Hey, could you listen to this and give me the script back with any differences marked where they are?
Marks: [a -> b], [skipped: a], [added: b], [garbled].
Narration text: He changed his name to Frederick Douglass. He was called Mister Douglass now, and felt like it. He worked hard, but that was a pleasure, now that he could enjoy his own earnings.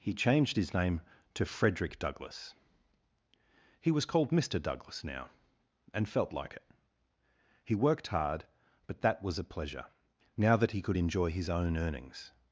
He changed his name to Frederick Douglass. He was called Mister Douglass now, and felt like it. He worked hard, but that was a pleasure, now that he could enjoy his own earnings.